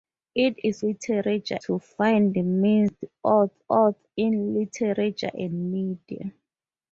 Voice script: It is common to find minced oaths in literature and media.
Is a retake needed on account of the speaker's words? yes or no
yes